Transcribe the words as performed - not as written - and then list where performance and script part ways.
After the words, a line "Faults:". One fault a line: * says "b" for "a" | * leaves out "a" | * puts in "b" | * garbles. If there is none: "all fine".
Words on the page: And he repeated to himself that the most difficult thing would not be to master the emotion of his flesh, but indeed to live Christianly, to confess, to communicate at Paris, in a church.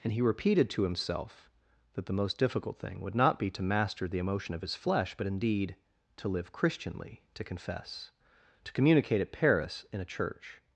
And he repeated to himself that the most difficult thing would not be to master the emotion of his flesh, but indeed to live Christianly, to confess, to communicate at Paris, in a church.
Faults:
all fine